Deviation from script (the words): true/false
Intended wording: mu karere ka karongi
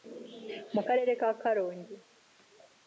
false